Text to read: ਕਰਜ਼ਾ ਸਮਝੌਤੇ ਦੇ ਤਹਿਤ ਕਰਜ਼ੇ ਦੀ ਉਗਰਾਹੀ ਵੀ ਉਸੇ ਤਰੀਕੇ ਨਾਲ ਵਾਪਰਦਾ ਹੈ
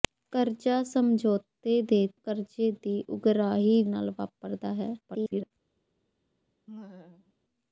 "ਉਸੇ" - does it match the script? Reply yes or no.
no